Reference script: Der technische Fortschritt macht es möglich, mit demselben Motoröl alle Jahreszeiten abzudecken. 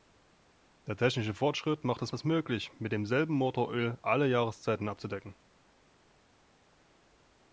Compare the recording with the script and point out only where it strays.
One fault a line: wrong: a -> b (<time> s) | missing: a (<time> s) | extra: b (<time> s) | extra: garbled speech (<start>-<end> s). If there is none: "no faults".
extra: es (2.1 s)